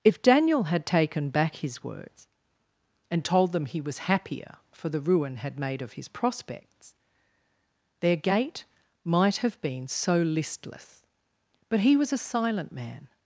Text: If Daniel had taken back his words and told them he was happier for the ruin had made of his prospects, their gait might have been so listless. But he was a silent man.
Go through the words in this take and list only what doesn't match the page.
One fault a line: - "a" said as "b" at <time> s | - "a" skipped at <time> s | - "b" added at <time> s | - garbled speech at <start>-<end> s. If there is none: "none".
none